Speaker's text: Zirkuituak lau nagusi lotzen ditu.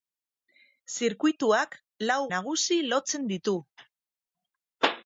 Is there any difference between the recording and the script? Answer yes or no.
no